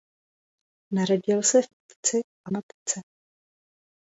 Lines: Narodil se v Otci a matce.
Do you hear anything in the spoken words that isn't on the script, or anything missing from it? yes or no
no